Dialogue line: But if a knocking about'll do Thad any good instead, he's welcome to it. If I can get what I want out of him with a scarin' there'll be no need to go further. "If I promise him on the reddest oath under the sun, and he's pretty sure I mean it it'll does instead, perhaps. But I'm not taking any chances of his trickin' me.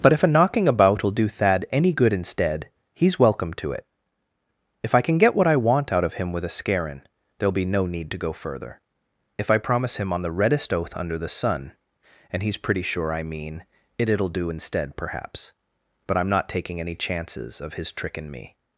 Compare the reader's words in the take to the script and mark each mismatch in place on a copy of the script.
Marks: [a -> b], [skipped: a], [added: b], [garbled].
But if a knocking about'll do Thad any good instead, he's welcome to it. If I can get what I want out of him with a scarin' there'll be no need to go further. "If I promise him on the reddest oath under the sun, and he's pretty sure I mean it it'll [does -> do] instead, perhaps. But I'm not taking any chances of his trickin' me.